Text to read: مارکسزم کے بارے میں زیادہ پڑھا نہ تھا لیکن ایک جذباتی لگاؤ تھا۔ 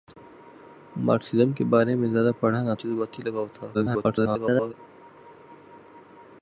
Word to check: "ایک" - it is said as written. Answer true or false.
false